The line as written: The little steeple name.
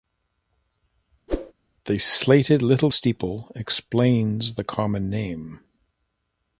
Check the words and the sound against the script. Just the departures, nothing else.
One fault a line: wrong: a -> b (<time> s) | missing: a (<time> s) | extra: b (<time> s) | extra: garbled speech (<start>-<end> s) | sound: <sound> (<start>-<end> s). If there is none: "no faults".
sound: whoosh (1.3-1.5 s)
extra: slated (2.0 s)
extra: explains the common (3.6 s)